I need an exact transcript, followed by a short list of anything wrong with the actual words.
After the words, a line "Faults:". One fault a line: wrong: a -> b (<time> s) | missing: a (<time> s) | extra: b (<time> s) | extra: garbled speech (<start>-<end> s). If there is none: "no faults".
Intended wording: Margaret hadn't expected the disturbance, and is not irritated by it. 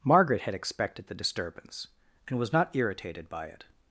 Margaret had expected the disturbance, and was not irritated by it.
Faults:
wrong: hadn't -> had (0.4 s)
wrong: is -> was (2.4 s)